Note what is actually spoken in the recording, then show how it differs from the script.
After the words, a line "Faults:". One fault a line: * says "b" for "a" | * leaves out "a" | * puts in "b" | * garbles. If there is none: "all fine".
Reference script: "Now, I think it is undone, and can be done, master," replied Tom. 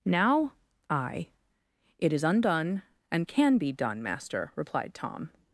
"Now, I it is undone, and can be done, master," replied Tom.
Faults:
* leaves out "think"